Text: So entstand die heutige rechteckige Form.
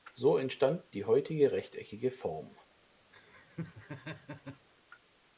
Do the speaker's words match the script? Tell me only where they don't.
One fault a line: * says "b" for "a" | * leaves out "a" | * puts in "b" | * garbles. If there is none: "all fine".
all fine